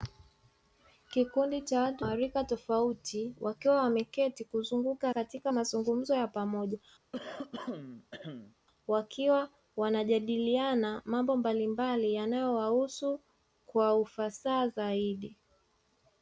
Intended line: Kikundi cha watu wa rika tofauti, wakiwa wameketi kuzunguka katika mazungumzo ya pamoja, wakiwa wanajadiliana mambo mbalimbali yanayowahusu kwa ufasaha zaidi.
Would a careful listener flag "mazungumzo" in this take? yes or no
no